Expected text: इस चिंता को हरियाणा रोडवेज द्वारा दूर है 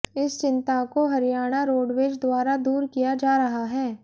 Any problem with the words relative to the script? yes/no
yes